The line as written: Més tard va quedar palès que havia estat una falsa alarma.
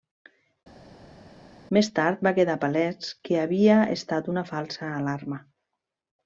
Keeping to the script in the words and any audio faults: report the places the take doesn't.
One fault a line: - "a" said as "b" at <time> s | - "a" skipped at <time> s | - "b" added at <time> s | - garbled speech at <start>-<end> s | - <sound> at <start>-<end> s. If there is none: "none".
none